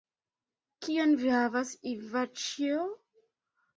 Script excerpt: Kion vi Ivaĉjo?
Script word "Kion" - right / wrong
right